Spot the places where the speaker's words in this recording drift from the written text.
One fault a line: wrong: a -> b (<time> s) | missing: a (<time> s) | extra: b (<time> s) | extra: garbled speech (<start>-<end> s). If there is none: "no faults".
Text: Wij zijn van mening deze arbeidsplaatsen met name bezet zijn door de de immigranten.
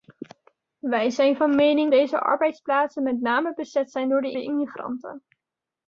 no faults